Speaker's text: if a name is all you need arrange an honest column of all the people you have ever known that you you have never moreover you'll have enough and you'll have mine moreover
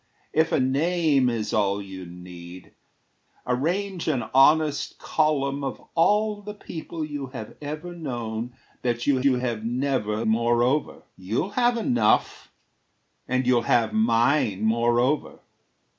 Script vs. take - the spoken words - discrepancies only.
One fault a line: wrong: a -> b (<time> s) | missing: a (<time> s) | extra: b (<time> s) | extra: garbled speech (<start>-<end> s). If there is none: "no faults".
no faults